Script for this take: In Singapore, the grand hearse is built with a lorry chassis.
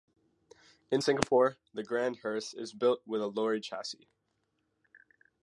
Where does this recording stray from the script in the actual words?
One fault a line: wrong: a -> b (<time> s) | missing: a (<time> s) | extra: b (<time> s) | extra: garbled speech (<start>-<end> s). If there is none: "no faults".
no faults